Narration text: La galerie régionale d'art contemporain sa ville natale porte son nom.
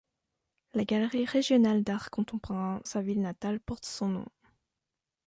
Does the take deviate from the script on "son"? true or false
false